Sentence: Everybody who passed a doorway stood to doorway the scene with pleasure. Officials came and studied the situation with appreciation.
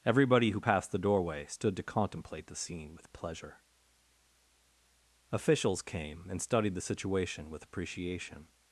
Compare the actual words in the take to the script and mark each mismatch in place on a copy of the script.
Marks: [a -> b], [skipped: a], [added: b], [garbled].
Everybody who passed [a -> the] doorway stood to [doorway -> contemplate] the scene with pleasure. Officials came and studied the situation with appreciation.